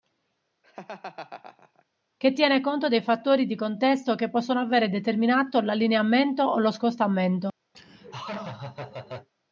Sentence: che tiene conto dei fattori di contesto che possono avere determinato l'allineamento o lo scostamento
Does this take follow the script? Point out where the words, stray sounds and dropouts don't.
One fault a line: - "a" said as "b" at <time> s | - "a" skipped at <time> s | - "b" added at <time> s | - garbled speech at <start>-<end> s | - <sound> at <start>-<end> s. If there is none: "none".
- laugh at 0.6-1.8 s
- laugh at 7.7-9.3 s